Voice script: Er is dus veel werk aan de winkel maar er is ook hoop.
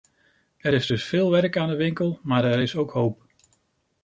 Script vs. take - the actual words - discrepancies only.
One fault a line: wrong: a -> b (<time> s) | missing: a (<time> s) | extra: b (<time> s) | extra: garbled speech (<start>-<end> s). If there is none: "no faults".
no faults